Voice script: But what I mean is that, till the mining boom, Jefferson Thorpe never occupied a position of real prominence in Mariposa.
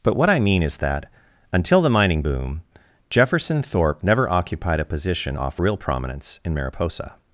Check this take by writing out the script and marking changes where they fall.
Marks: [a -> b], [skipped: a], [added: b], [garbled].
But what I mean is that, [till -> until] the mining boom, Jefferson Thorpe never occupied a position [of -> off] real prominence in Mariposa.